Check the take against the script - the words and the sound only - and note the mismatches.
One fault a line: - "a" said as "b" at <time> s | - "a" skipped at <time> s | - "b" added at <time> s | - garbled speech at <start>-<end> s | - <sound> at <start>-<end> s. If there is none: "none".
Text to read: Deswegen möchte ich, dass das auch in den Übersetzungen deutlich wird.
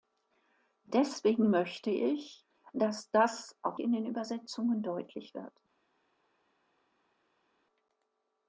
none